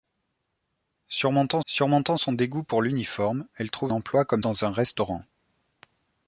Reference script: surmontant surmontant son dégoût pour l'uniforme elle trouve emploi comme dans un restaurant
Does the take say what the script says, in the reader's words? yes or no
yes